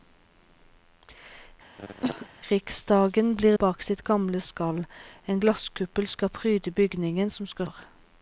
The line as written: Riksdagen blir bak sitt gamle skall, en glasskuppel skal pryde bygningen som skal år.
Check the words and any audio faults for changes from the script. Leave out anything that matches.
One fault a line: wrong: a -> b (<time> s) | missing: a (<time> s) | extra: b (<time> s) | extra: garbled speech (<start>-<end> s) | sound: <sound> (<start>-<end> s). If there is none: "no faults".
sound: cough (1.8-2.3 s)